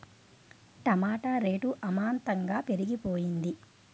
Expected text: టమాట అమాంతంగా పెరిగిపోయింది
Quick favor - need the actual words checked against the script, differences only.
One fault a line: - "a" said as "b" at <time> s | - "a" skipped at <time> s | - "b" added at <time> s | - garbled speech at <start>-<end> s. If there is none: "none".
- "రేటు" added at 1.4 s